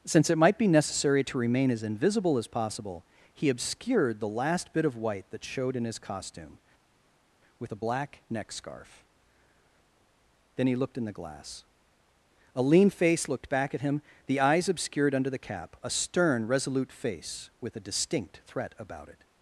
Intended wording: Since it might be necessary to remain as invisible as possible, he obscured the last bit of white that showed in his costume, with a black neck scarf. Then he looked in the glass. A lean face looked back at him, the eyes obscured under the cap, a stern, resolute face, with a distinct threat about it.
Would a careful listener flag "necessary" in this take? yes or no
no